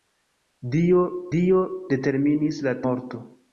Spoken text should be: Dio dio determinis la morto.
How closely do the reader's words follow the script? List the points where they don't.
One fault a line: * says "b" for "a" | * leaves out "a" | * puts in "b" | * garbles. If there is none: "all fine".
all fine